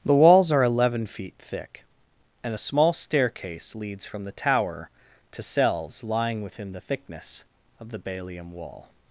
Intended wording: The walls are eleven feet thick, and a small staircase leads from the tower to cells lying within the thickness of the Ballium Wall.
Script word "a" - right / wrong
right